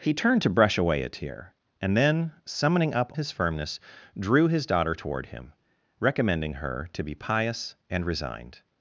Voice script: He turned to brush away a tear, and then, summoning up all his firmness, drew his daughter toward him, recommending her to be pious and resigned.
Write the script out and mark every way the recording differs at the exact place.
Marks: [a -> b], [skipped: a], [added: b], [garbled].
He turned to brush away a tear, and then, summoning up [skipped: all] his firmness, drew his daughter toward him, recommending her to be pious and resigned.